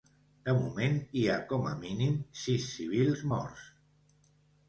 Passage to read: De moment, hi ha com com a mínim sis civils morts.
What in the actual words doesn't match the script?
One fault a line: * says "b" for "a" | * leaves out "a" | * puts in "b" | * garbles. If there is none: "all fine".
* leaves out "com"